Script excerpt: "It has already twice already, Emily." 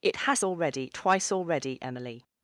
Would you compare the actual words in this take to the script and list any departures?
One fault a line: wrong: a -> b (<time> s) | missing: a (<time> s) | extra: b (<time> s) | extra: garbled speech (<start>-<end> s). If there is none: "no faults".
no faults